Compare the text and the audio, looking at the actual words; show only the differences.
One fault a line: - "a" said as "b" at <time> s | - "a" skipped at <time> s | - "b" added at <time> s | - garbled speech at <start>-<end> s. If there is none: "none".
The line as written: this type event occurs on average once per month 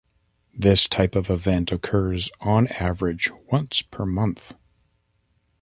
- "of" added at 1.1 s